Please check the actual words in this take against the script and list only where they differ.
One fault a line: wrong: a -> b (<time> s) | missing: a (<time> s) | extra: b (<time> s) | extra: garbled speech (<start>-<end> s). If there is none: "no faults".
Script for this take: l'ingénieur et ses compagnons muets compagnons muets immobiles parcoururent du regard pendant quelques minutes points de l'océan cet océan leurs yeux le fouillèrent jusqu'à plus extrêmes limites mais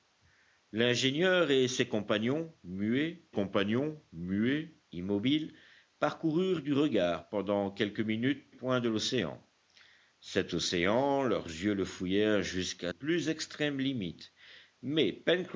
no faults